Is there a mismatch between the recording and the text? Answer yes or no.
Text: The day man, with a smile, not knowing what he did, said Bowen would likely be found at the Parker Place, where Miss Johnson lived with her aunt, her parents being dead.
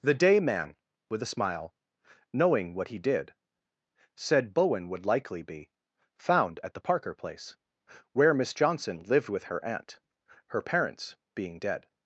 yes